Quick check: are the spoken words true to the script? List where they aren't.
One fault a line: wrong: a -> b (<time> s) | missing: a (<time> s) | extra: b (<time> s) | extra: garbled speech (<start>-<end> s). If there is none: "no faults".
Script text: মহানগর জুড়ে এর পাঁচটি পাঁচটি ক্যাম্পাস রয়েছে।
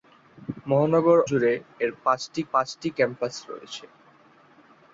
no faults